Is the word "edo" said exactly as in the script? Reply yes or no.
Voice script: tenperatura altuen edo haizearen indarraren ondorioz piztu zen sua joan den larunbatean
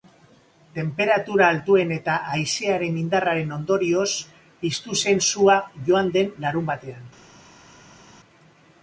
no